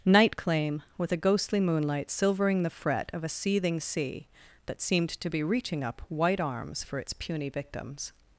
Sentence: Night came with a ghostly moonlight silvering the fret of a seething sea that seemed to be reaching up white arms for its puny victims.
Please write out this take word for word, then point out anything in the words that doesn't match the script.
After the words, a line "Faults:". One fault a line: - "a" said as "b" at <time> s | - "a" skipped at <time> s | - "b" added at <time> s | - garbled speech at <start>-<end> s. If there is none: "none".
Night claim with a ghostly moonlight silvering the fret of a seething sea that seemed to be reaching up white arms for its puny victims.
Faults:
- "came" said as "claim" at 0.4 s